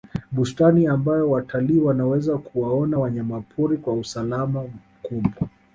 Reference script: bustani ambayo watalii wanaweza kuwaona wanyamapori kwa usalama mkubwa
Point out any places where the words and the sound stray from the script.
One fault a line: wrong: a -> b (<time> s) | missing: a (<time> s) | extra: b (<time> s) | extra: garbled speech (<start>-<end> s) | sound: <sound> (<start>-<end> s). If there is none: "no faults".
no faults